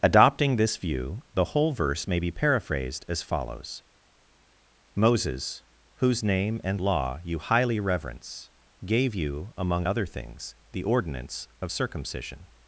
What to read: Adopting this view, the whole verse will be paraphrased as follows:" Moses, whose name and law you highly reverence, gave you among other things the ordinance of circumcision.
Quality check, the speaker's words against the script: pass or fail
fail